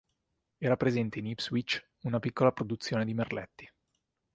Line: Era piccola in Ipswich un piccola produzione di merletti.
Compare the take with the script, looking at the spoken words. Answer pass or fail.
fail